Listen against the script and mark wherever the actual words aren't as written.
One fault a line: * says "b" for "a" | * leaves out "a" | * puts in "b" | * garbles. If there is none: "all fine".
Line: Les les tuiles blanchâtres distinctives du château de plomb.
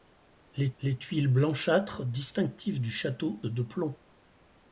all fine